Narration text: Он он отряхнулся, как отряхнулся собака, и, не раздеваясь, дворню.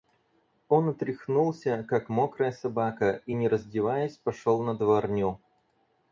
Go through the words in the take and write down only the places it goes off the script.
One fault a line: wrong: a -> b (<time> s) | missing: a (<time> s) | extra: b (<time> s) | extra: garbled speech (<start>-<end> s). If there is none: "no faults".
missing: он (0.9 s)
wrong: отряхнулся -> мокрая (2.1 s)
extra: пошел на (4.2 s)